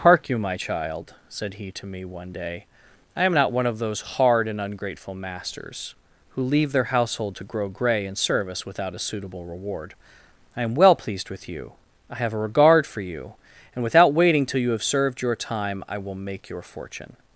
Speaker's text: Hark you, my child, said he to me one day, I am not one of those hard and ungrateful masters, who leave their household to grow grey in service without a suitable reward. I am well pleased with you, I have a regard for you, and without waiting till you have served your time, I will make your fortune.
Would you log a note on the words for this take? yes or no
no